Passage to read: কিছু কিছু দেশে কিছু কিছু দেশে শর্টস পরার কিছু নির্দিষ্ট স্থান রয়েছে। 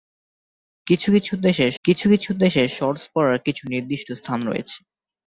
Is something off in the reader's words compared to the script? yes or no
no